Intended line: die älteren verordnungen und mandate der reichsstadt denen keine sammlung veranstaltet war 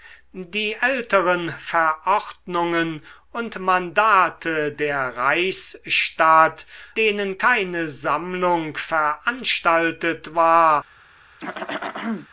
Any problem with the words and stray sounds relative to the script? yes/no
yes